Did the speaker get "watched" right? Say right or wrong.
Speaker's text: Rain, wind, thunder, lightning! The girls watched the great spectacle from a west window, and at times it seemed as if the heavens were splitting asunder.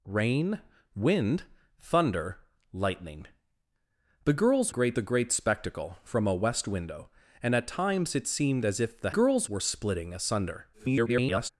wrong